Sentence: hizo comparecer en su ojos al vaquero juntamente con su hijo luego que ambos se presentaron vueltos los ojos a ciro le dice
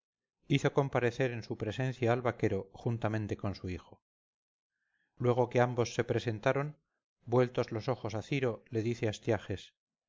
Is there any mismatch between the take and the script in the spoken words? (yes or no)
yes